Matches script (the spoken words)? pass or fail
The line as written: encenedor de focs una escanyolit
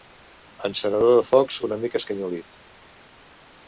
fail